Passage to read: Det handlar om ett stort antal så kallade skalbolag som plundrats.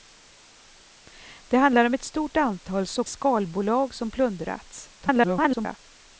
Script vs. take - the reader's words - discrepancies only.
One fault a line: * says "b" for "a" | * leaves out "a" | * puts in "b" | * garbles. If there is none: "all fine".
* leaves out "kallade"
* garbles